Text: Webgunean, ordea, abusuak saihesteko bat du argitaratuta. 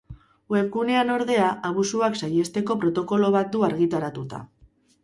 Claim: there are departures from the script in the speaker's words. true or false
true